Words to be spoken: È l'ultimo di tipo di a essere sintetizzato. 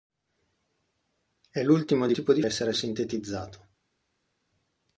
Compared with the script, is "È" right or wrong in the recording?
right